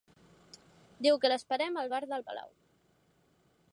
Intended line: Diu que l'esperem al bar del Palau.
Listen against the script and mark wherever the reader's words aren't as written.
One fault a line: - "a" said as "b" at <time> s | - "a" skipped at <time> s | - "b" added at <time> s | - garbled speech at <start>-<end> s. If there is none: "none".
none